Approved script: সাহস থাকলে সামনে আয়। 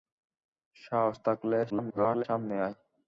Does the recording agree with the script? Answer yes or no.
no